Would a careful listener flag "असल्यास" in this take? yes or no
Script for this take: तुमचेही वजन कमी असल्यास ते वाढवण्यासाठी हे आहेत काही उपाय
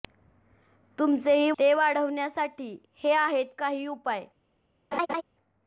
yes